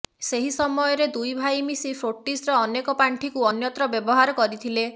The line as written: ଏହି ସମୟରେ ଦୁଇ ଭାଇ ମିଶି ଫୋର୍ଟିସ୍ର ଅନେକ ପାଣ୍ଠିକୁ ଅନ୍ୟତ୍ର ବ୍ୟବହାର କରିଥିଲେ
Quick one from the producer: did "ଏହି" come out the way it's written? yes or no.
no